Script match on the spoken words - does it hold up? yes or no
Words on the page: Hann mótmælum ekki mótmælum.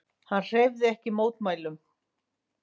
no